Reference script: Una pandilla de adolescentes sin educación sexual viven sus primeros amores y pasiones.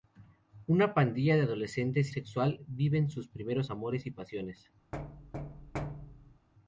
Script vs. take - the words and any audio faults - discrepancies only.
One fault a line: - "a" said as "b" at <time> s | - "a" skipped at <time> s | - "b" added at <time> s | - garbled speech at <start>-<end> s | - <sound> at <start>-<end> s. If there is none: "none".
- "sin educación" skipped at 2.1 s
- thud at 4.9-6.5 s